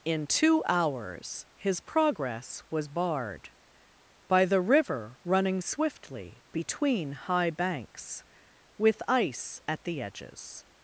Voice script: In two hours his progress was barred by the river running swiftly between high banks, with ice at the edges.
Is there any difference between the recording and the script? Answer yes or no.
no